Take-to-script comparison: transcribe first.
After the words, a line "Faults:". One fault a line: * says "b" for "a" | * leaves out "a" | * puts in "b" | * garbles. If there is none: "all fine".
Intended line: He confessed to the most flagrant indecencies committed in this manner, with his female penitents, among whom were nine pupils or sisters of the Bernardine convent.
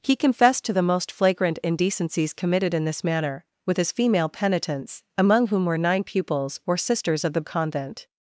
He confessed to the most flagrant indecencies committed in this manner, with his female penitents, among whom were nine pupils or sisters of the Convent.
Faults:
* leaves out "Bernardine"